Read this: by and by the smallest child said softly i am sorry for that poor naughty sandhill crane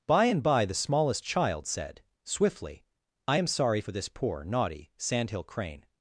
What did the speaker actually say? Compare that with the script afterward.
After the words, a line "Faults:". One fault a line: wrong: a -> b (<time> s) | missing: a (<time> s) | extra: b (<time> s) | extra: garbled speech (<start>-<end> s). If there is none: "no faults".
by and by the smallest child said swiftly i am sorry for this poor naughty sandhill crane
Faults:
wrong: softly -> swiftly (2.2 s)
wrong: that -> this (3.9 s)